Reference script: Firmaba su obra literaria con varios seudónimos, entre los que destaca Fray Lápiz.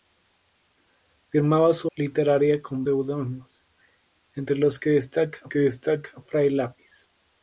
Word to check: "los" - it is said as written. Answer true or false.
true